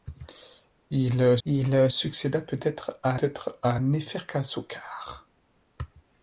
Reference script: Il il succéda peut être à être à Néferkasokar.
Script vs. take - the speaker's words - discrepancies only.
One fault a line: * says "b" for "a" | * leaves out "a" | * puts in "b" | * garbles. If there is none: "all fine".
all fine